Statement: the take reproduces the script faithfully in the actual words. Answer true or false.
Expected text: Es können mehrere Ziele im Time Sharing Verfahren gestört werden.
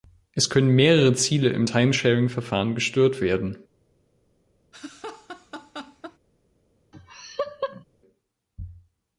true